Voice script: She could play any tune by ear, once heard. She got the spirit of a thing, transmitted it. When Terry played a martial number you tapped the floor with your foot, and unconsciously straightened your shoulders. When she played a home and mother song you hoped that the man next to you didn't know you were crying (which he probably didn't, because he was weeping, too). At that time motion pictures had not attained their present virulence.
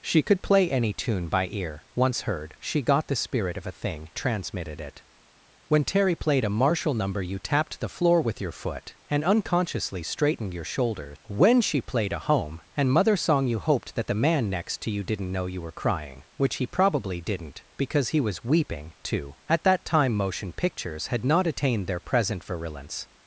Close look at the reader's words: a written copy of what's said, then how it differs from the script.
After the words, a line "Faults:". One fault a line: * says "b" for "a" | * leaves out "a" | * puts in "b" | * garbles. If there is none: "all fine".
She could play any tune by ear, once heard. She got the spirit of a thing, transmitted it. When Terry played a martial number you tapped the floor with your foot, and unconsciously straightened your shoulders. When she played a home and mother song you hoped that the man next to you didn't know you were crying (which he probably didn't, because he was weeping, too). At that time motion pictures had not attained their present virulence.
Faults:
all fine